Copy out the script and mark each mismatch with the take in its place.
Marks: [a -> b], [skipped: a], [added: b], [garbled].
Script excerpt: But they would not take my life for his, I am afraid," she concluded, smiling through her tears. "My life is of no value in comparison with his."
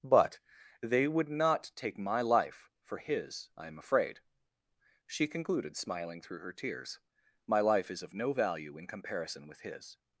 But they would not take my life for his, I am afraid," she concluded, smiling through her tears. "My life is of no value in comparison with his."